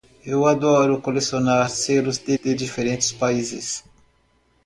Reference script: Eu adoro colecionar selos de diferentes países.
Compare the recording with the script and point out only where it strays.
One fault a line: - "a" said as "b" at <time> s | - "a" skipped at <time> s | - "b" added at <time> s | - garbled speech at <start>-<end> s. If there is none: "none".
- "de" added at 2.3 s